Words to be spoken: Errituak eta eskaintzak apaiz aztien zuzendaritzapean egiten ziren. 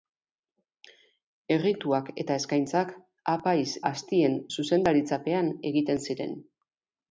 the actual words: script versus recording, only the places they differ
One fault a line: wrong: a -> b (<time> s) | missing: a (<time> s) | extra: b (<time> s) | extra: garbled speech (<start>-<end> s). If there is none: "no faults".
no faults